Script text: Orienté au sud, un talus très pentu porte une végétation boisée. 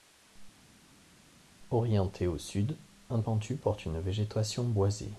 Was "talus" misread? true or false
true